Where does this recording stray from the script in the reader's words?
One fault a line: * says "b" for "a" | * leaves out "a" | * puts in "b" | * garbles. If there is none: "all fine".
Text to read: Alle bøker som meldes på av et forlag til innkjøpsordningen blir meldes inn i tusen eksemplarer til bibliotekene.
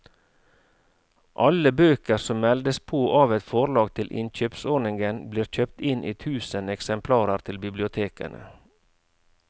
* says "kjøpt" for "meldes"